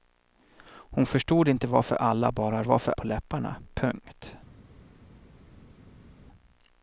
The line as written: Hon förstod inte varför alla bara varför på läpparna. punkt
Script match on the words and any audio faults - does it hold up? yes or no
yes